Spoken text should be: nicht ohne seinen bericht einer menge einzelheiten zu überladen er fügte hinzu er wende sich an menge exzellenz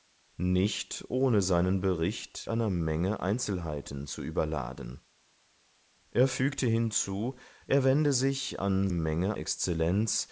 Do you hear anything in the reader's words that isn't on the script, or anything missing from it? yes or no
no